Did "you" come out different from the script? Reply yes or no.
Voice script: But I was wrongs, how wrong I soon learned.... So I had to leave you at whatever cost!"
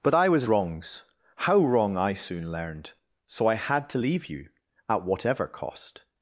no